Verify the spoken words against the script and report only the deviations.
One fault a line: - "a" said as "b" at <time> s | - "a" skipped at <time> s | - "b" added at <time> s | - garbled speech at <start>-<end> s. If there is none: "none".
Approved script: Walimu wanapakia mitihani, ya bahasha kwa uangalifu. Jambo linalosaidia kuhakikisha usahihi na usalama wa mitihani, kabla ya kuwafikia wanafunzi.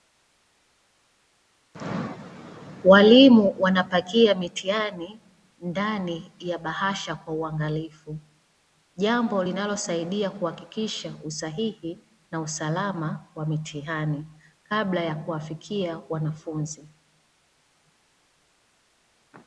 - "ndani" added at 5.6 s